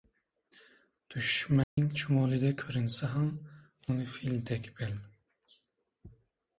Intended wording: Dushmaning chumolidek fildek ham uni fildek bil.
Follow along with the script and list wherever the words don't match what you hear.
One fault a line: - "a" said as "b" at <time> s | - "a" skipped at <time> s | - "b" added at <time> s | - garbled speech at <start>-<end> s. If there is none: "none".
- "fildek" said as "ko‘rinsa" at 2.6 s